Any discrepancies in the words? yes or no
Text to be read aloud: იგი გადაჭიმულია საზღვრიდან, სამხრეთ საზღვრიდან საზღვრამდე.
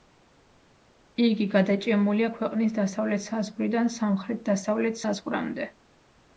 yes